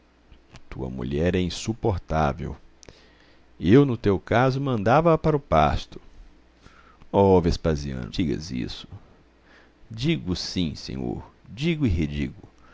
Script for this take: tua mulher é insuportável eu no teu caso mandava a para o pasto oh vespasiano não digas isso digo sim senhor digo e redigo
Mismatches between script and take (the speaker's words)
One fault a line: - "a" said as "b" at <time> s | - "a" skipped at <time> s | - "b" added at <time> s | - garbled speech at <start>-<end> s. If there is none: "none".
- "não" skipped at 8.1 s